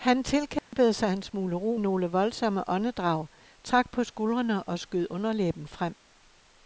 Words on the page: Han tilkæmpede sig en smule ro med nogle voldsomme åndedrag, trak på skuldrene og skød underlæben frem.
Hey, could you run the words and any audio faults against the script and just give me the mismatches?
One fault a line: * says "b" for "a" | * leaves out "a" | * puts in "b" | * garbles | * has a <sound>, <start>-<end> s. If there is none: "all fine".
* has a dropout, 0.6-0.7 s
* leaves out "med"